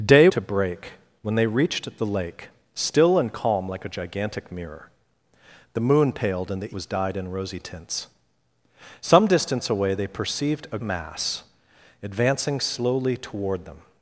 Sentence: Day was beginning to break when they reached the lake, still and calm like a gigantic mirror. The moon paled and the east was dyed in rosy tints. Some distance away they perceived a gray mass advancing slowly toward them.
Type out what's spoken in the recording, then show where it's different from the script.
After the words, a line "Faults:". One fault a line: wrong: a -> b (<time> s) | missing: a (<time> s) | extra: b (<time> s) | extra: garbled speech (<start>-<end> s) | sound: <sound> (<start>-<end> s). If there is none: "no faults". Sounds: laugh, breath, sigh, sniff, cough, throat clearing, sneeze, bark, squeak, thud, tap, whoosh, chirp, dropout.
Day to break when they reached the lake, still and calm like a gigantic mirror. The moon paled and the was dyed in rosy tints. Some distance away they perceived a mass advancing slowly toward them.
Faults:
missing: was beginning (0.3 s)
missing: east (6.8 s)
missing: gray (10.8 s)